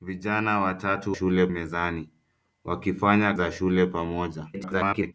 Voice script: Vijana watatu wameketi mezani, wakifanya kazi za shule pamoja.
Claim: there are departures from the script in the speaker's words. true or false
true